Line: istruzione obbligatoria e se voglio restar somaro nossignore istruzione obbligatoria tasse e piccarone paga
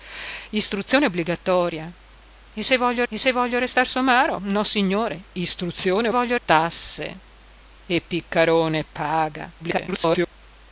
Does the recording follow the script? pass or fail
fail